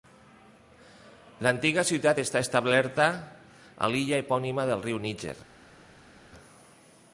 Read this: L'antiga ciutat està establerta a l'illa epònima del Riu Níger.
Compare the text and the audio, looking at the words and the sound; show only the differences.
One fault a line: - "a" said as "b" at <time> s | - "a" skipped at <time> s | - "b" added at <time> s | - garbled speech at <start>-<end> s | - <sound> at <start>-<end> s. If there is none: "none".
none